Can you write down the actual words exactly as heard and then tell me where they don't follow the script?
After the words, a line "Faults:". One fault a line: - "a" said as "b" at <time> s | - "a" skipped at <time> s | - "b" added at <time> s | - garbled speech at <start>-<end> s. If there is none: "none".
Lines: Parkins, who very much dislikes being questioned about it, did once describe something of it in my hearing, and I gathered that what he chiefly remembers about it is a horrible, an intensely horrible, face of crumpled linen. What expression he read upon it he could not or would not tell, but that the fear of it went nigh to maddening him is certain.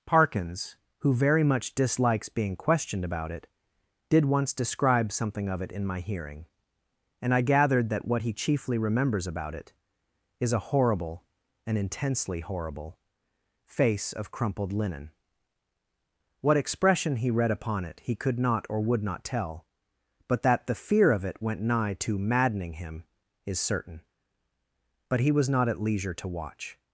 Parkins, who very much dislikes being questioned about it, did once describe something of it in my hearing, and I gathered that what he chiefly remembers about it is a horrible, an intensely horrible, face of crumpled linen. What expression he read upon it he could not or would not tell, but that the fear of it went nigh to maddening him is certain. But he was not at leisure to watch
Faults:
- "But he was not at leisure to watch" added at 25.1 s